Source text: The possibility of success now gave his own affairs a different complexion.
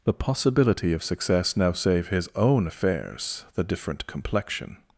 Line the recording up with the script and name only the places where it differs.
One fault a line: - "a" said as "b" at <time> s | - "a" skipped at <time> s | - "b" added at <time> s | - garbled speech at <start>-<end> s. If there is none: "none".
- "gave" said as "save" at 1.7 s
- "a" said as "the" at 3.5 s